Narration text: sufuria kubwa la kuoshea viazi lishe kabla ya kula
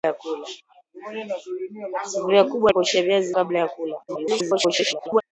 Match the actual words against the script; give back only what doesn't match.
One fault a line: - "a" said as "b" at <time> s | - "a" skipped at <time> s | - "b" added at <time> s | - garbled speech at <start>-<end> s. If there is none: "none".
- "la" skipped at 2.7 s
- "lishe" skipped at 3.3 s
- garbled speech at 4.1-5.2 s